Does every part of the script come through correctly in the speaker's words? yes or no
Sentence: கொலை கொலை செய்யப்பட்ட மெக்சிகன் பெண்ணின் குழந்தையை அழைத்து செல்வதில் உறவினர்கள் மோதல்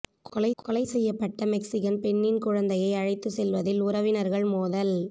yes